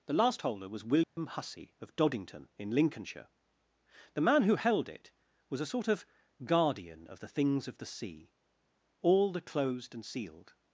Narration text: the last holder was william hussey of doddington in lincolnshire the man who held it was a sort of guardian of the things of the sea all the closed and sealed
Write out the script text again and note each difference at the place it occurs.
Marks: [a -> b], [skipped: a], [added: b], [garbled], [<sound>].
the last holder was william [dropout] hussey of doddington in lincolnshire the man who held it was a sort of guardian of the things of the sea all the closed and sealed